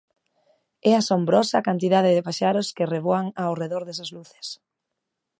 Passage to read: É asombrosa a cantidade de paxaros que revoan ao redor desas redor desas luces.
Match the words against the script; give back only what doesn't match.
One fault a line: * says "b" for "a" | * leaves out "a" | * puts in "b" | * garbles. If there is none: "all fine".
* leaves out "redor desas"